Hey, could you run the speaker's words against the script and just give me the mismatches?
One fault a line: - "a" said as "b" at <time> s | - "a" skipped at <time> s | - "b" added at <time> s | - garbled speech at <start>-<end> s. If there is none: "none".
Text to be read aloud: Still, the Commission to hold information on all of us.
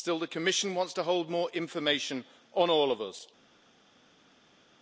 - "wants" added at 0.7 s
- "more" added at 1.3 s